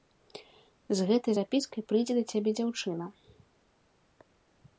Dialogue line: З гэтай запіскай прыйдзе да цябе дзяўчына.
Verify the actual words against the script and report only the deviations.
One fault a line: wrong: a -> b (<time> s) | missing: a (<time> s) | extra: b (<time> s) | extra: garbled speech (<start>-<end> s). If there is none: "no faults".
no faults